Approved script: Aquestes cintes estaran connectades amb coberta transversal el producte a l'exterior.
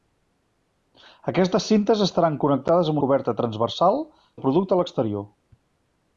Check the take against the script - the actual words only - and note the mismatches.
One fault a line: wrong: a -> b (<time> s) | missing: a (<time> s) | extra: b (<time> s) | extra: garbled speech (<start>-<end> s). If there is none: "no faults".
no faults